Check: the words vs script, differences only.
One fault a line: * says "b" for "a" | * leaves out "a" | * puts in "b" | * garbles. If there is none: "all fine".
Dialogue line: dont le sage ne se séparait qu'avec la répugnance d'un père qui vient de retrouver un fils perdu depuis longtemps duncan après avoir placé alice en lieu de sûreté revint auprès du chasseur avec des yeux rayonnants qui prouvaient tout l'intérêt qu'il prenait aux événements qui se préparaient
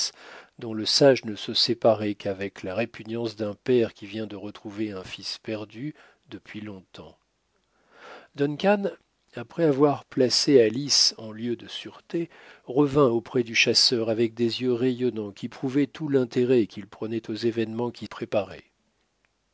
* leaves out "se"